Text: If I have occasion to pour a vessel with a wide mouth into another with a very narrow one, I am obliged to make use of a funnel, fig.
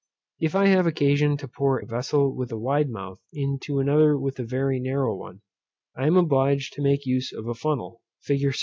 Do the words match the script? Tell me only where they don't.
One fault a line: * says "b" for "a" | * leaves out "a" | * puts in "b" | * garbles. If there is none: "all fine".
all fine